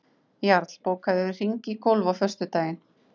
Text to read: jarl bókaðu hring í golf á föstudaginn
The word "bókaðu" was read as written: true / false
true